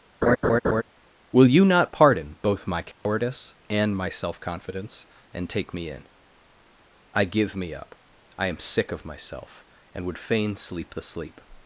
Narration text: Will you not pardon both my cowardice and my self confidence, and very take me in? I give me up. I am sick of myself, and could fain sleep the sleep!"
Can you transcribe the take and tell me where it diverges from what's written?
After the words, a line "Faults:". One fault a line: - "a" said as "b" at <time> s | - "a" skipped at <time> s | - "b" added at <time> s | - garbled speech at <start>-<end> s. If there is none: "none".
Will you not pardon both my cowardice and my self confidence, and take me in? I give me up. I am sick of myself, and would fain sleep the sleep!"
Faults:
- "very" skipped at 5.5 s
- "could" said as "would" at 10.0 s